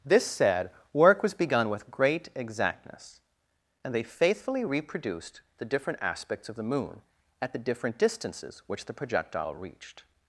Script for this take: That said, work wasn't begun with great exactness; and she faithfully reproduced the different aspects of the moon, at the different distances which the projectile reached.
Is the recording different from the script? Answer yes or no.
yes